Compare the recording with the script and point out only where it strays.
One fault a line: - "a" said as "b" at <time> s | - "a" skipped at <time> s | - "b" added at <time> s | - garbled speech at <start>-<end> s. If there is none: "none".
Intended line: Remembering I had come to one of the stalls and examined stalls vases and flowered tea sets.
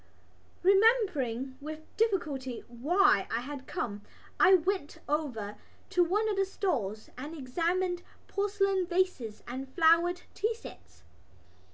- "with difficulty why" added at 1.6 s
- "I went over" added at 4.4 s
- "stalls" said as "porcelain" at 8.3 s